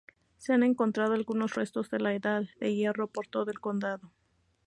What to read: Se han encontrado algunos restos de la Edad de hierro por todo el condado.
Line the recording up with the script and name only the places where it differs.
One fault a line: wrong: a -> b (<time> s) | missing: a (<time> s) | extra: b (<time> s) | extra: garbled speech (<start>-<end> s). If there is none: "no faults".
no faults